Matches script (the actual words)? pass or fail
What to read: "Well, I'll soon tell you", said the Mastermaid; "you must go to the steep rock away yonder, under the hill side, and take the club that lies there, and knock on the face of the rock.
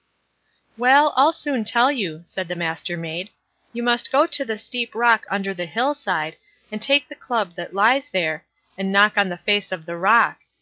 fail